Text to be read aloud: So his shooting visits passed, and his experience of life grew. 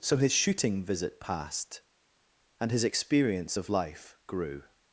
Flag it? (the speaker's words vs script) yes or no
yes